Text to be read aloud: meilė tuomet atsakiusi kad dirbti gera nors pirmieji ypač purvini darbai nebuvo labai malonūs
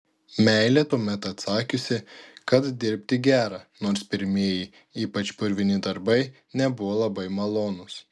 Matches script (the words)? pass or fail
pass